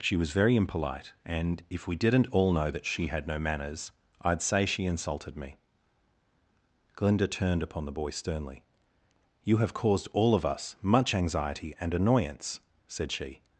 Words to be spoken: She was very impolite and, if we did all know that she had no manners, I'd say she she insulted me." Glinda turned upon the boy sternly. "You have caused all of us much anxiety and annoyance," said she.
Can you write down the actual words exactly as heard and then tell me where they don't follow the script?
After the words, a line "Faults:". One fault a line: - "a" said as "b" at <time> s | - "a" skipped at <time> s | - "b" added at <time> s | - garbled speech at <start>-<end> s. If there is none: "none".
She was very impolite and, if we didn't all know that she had no manners, I'd say she insulted me." Glinda turned upon the boy sternly. "You have caused all of us much anxiety and annoyance," said she.
Faults:
- "did" said as "didn't" at 1.9 s
- "she" skipped at 4.9 s